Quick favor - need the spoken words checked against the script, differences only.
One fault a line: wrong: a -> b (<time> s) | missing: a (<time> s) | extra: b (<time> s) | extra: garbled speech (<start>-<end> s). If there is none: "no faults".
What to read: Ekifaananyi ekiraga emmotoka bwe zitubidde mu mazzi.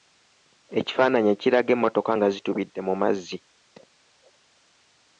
wrong: bwe -> nga (2.1 s)